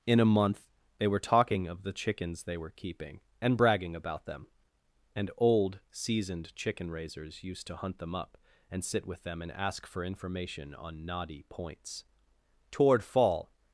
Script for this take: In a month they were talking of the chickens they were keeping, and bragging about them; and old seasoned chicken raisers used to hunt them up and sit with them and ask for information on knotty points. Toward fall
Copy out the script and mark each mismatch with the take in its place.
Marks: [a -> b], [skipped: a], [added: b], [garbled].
In a month they were talking of the chickens they were keeping, and bragging about them; and old seasoned chicken raisers used to hunt them up and sit with them and ask for information on knotty points. Toward fall